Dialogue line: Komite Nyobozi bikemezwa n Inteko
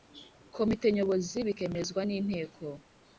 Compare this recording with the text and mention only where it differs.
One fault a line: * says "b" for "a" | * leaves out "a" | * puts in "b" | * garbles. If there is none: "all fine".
all fine